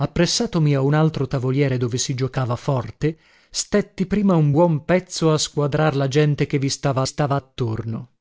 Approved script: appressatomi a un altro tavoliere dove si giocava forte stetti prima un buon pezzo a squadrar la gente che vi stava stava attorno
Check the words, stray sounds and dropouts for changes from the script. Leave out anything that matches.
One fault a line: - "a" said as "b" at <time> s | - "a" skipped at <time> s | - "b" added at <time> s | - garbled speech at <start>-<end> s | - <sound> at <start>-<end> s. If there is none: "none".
none